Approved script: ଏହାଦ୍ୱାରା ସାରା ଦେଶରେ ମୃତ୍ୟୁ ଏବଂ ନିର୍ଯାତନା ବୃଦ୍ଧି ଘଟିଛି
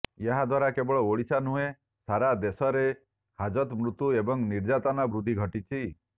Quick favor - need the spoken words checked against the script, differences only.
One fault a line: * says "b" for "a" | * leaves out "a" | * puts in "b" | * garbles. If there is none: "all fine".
* puts in "କେବଳ ଓଡ଼ିଶା ନୁହେଁ"
* puts in "ହାଜତ"